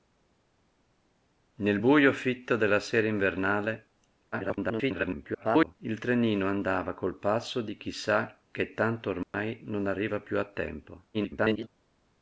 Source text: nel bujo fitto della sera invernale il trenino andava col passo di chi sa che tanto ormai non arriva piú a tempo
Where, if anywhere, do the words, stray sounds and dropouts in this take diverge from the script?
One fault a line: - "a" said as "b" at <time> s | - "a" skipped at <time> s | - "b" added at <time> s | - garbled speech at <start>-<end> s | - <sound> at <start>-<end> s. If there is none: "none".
- garbled speech at 4.3-5.8 s
- dropout at 9.2-9.3 s
- garbled speech at 11.1-11.7 s